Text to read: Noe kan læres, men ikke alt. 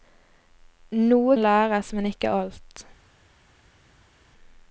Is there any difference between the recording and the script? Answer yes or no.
yes